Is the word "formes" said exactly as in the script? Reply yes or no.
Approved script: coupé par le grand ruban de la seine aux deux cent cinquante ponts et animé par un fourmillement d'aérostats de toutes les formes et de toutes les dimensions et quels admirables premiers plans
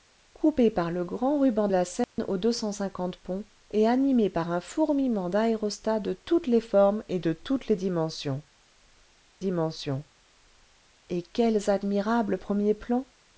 yes